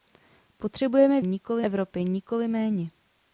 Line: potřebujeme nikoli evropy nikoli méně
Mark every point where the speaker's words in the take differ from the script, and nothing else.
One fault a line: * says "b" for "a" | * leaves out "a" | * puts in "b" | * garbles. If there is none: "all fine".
all fine